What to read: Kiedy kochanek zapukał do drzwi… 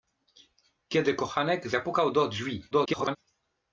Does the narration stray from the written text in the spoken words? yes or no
yes